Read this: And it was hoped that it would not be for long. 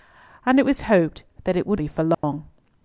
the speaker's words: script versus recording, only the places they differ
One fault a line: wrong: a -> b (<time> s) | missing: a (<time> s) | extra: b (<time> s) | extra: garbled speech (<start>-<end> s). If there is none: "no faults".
missing: not (1.8 s)